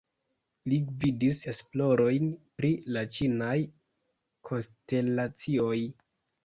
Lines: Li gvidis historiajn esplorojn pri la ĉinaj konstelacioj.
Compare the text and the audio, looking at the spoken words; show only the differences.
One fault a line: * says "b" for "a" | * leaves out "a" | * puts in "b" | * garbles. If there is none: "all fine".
* leaves out "historiajn"